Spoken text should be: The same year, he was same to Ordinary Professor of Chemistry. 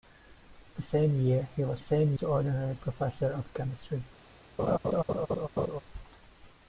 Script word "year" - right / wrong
right